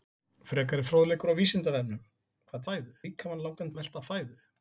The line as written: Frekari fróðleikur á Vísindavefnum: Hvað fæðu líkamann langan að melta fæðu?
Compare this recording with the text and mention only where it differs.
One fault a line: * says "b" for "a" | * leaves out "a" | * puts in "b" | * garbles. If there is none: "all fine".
all fine